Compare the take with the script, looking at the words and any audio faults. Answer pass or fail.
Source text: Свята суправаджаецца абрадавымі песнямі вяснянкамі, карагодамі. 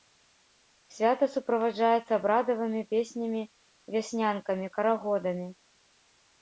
pass